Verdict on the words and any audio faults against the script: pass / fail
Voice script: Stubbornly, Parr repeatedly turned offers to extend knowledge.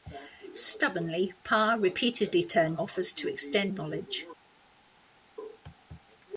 pass